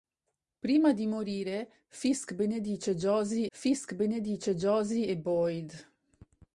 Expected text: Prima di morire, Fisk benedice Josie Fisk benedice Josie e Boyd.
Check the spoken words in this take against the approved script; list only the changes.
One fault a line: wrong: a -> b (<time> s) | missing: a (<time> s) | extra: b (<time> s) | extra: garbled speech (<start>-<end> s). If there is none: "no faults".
no faults